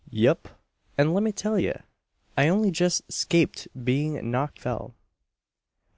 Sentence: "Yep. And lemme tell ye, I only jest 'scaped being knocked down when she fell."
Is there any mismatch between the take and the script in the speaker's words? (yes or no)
yes